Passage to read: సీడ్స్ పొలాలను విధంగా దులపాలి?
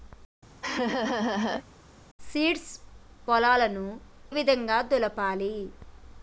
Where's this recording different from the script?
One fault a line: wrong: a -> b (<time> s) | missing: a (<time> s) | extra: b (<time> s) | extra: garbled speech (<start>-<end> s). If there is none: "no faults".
no faults